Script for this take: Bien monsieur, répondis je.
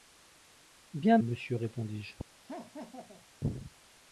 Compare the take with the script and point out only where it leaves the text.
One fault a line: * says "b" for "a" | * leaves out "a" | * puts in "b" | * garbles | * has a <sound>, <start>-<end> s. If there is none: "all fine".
* has a laugh, 2.5-3.3 s